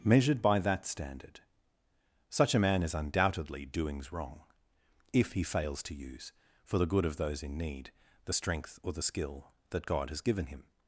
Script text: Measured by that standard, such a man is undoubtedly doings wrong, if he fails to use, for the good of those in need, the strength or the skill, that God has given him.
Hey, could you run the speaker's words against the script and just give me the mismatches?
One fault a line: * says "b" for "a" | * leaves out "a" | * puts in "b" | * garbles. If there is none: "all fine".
all fine